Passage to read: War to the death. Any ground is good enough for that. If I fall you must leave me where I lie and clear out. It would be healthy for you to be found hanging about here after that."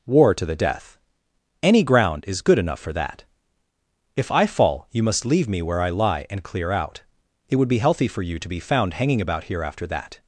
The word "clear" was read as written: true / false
true